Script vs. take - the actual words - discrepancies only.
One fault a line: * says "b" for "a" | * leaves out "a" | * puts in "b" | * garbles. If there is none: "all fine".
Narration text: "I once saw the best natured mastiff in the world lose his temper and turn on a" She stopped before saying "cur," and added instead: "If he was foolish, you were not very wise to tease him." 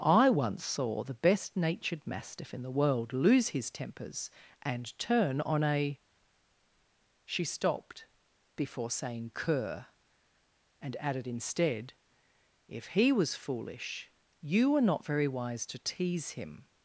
* says "tempers" for "temper"